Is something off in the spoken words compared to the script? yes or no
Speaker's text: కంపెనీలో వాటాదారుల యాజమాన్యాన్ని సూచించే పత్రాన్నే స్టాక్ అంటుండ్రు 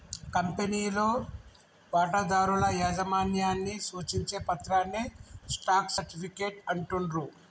yes